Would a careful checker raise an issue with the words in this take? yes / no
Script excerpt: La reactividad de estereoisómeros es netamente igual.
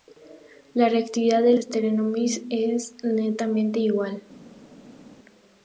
no